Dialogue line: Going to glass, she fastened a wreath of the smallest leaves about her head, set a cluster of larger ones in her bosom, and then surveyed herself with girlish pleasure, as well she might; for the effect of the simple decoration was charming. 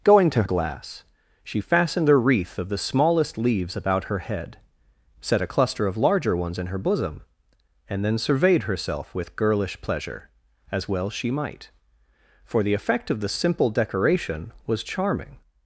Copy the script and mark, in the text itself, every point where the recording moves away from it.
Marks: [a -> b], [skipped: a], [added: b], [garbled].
Going to glass, she fastened a wreath of the smallest leaves about her head, set a cluster of larger ones in her bosom, and then surveyed herself with girlish pleasure, as well she might; for the effect of the simple decoration was charming.